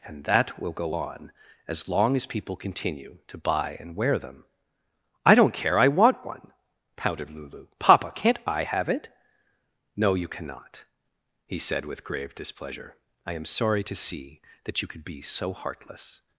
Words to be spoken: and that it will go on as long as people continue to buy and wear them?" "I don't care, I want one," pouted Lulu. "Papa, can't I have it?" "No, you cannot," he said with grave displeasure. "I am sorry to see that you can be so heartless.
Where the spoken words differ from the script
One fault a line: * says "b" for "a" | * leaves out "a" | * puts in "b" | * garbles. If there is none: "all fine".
* leaves out "it"
* says "could" for "can"